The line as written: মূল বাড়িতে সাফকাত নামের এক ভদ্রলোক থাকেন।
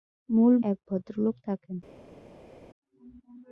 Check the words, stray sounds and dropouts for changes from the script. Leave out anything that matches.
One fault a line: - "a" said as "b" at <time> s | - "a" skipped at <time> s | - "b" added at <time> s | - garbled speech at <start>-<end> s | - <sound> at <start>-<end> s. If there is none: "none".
- "বাড়িতে সাফকাত নামের" skipped at 0.5 s